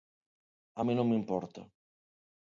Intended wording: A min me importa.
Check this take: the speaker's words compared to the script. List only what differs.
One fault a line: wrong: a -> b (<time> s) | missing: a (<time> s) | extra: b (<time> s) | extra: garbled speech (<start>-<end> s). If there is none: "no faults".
extra: non (1.0 s)